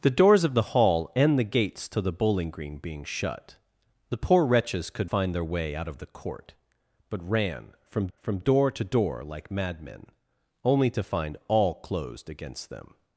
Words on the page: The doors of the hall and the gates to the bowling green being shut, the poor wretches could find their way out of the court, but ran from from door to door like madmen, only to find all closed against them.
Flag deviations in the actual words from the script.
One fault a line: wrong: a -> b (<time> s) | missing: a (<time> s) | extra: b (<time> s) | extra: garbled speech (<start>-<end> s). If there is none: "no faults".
no faults